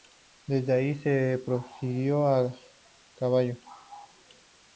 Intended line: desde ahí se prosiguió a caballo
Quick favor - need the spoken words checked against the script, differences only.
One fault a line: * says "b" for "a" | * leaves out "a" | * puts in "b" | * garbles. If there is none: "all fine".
all fine